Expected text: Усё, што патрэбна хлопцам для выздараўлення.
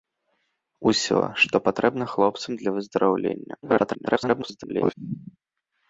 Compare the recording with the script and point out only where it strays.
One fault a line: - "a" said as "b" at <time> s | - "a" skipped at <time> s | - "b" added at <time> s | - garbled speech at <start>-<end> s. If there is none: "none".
- garbled speech at 3.6-4.9 s